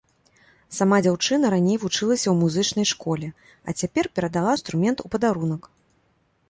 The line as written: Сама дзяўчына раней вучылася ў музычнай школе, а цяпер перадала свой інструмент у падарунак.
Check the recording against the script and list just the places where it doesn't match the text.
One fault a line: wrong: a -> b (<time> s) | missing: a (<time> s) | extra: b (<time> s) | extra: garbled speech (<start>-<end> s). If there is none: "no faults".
missing: свой (4.5 s)